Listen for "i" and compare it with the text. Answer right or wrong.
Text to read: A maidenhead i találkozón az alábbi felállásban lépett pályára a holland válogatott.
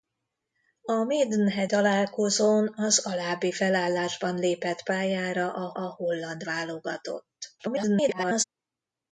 wrong